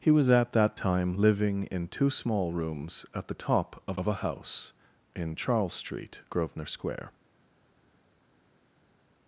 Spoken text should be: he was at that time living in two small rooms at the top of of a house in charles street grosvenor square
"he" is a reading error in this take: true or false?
false